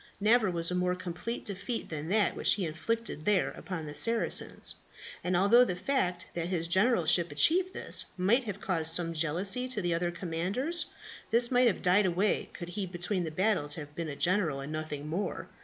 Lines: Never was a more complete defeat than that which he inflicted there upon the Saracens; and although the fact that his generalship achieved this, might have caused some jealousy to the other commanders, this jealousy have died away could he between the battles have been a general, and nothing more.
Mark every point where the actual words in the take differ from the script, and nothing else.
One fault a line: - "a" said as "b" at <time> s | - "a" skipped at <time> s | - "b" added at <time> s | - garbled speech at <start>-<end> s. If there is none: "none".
- "jealousy" said as "might" at 11.5 s